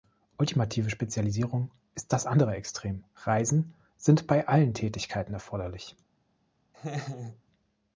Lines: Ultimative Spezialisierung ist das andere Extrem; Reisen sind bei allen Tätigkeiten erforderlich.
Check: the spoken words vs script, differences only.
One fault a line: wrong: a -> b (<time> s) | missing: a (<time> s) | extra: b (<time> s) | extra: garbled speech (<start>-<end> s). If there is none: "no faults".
no faults